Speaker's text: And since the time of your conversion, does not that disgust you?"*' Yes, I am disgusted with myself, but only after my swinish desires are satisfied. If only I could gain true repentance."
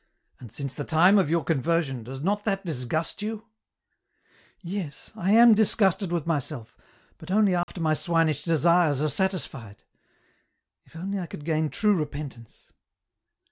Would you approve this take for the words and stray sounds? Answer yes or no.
no